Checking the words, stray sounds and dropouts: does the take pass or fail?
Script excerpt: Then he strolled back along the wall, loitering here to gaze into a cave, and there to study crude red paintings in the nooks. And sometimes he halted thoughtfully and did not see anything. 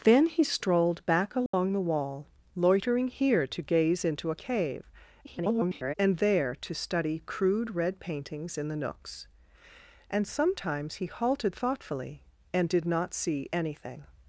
fail